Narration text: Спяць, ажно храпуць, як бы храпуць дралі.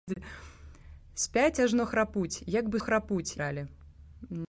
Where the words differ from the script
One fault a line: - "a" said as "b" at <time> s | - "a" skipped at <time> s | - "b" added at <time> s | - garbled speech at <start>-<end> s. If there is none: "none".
none